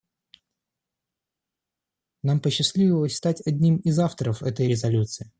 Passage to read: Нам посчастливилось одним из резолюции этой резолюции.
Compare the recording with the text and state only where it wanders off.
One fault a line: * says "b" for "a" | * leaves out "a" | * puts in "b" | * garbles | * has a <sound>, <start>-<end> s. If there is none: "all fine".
* puts in "стать"
* says "авторов" for "резолюции"